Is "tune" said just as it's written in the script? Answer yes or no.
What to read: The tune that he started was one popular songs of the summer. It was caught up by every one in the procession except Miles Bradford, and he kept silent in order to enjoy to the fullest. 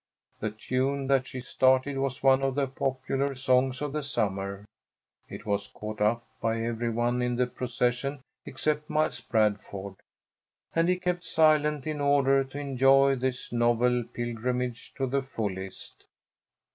yes